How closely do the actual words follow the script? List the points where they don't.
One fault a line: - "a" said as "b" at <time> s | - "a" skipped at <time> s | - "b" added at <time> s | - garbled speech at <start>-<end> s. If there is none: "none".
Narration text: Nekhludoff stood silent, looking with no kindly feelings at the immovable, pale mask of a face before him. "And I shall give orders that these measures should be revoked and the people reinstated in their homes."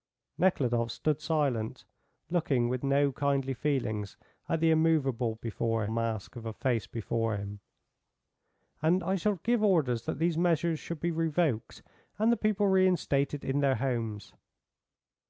- "pale" said as "before" at 5.3 s